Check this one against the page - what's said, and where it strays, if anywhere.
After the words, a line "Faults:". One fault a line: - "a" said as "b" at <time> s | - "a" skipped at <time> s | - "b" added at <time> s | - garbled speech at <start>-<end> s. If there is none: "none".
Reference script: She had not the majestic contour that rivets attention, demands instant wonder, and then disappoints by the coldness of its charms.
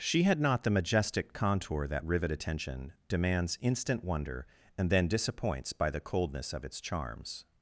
She had not the majestic contour that rivet attention, demands instant wonder, and then disappoints by the coldness of its charms.
Faults:
- "rivets" said as "rivet" at 2.0 s